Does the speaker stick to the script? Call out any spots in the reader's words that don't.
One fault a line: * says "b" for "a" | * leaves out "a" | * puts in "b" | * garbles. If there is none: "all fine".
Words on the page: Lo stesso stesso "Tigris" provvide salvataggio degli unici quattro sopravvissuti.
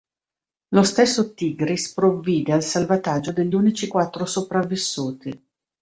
* leaves out "stesso"
* puts in "al"